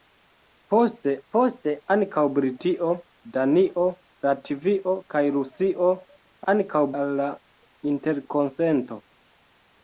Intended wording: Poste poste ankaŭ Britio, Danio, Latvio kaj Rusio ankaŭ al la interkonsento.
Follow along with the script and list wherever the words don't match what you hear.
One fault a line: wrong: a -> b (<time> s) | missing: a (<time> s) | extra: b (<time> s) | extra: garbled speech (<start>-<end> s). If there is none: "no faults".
no faults